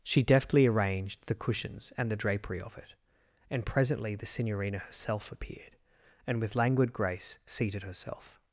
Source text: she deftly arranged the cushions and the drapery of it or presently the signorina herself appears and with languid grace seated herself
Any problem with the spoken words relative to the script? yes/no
yes